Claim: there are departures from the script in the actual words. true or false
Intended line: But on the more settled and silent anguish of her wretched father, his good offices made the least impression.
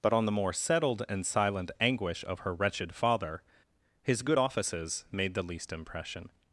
false